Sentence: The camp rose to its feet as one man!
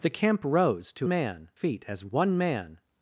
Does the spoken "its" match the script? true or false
false